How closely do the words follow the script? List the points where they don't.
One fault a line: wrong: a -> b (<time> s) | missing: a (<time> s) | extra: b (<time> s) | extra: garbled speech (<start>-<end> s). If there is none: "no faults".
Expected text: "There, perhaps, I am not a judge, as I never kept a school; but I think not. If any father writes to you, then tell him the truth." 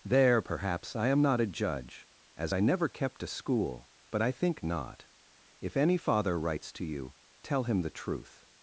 missing: then (7.1 s)